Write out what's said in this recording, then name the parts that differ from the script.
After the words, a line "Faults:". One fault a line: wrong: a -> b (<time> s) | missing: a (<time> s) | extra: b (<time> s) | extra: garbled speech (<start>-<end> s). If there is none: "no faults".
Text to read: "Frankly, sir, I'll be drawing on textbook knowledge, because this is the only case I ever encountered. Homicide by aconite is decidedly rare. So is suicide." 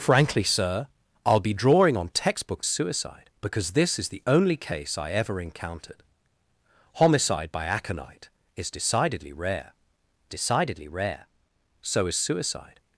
"Frankly, sir, I'll be drawing on textbook suicide, because this is the only case I ever encountered. Homicide by aconite is decidedly rare decidedly rare. So is suicide."
Faults:
wrong: knowledge -> suicide (2.7 s)
extra: decidedly rare (10.3 s)